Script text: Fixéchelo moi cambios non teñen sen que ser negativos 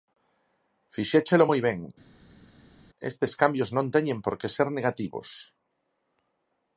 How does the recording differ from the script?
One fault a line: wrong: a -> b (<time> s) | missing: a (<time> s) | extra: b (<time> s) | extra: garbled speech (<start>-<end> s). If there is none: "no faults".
extra: ben estes (1.7 s)
wrong: sen -> por (4.2 s)